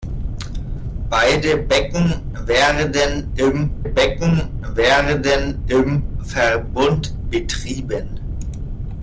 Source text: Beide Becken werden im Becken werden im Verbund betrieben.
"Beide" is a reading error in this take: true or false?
false